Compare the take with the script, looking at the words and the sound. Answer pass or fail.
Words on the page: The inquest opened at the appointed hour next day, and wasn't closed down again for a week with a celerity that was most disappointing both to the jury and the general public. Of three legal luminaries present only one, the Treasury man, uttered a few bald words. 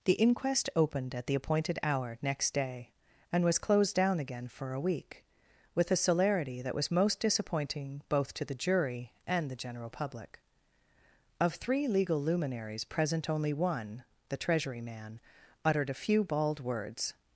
fail